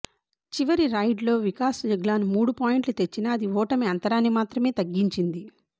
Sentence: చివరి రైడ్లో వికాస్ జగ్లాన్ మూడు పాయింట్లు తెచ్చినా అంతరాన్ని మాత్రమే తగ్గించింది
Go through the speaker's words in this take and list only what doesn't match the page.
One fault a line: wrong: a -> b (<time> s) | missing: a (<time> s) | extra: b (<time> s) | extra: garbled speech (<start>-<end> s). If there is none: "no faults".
extra: అది ఓటమి (3.3 s)